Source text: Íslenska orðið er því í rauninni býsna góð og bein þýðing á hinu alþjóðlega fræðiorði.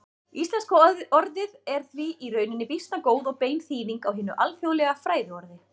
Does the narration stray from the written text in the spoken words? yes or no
no